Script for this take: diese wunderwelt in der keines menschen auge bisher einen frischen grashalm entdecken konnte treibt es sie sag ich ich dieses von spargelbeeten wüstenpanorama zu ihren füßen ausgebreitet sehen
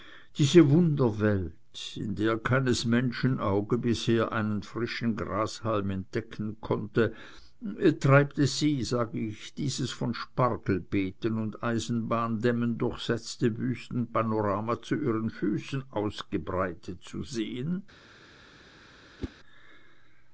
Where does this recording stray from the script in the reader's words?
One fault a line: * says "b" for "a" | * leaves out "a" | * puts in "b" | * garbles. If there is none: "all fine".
* leaves out "ich"
* puts in "und eisenbahndämmen durchsetzte"
* puts in "zu"